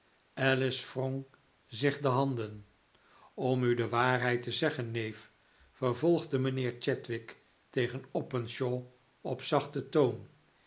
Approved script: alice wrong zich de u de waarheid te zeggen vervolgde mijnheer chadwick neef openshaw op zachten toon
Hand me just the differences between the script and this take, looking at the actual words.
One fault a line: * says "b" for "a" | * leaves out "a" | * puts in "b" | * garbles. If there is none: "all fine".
* puts in "handen om"
* puts in "neef"
* says "tegen" for "neef"